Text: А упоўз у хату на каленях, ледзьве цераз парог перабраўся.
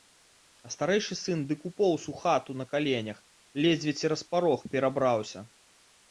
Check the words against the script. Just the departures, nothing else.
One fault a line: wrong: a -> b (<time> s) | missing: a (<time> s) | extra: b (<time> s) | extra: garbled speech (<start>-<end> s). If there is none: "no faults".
extra: старэйшы сын дык (0.8 s)